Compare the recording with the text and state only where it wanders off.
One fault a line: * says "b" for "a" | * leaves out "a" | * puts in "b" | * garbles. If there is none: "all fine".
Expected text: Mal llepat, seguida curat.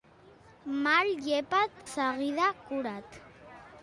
all fine